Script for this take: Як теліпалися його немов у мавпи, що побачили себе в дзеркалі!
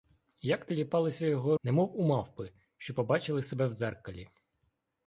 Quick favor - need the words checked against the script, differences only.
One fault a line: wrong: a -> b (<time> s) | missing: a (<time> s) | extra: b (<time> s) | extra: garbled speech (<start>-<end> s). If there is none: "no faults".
no faults